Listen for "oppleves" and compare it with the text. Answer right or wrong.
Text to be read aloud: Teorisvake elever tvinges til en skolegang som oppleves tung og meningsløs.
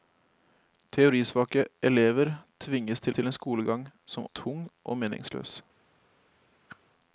wrong